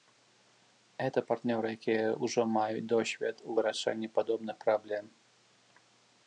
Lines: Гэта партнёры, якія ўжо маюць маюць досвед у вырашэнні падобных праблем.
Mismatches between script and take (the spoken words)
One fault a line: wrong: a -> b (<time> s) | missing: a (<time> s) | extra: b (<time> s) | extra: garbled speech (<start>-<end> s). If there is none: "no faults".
missing: маюць (2.9 s)